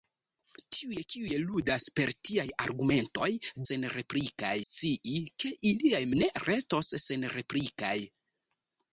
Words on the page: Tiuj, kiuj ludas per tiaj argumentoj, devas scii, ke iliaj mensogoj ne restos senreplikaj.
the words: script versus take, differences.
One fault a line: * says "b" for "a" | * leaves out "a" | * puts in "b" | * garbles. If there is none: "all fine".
* says "senreplikaj" for "devas"
* leaves out "mensogoj"